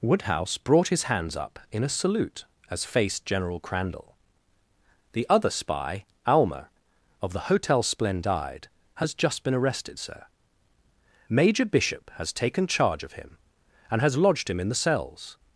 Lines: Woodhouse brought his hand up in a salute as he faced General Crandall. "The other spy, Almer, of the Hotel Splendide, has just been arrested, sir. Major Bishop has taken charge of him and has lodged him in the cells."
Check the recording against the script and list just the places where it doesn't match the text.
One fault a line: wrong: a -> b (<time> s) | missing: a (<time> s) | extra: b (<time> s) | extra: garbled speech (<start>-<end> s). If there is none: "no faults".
wrong: hand -> hands (1.0 s)
missing: he (2.9 s)